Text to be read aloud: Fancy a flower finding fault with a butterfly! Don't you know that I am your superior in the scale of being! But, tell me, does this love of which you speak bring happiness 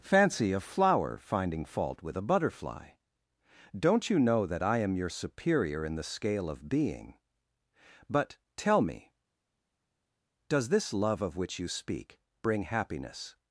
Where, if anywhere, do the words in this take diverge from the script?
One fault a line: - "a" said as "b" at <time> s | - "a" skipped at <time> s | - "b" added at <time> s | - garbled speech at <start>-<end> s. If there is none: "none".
none